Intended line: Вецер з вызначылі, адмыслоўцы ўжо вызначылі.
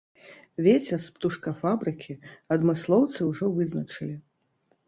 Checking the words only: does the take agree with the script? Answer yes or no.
no